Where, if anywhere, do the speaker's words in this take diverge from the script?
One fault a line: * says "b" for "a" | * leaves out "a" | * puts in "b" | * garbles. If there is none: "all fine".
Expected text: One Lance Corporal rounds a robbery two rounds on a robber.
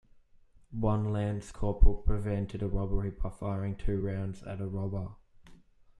* says "prevented" for "rounds"
* puts in "by firing"
* says "at" for "on"